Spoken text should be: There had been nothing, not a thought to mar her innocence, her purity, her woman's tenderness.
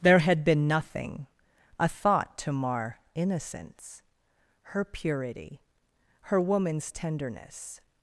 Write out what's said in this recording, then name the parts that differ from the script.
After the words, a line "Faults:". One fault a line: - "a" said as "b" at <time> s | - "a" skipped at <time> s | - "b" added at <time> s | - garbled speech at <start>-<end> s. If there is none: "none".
There had been nothing, a thought to mar innocence, her purity, her woman's tenderness.
Faults:
- "not" skipped at 1.3 s
- "her" skipped at 3.0 s